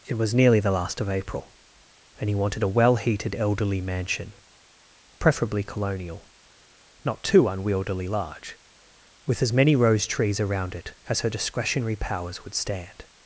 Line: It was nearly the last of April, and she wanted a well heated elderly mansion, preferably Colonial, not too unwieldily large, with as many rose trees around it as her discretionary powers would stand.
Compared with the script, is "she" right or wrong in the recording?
wrong